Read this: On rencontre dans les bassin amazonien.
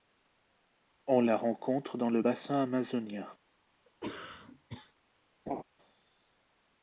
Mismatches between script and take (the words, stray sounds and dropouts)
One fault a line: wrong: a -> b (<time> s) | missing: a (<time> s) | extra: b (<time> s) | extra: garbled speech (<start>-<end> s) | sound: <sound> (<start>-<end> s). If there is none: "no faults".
extra: la (1.2 s)
wrong: les -> le (2.1 s)
sound: cough (3.9-4.9 s)
sound: laugh (5.5-5.6 s)